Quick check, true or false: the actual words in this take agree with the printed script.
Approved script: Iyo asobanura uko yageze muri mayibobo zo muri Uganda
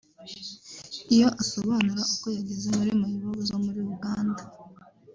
true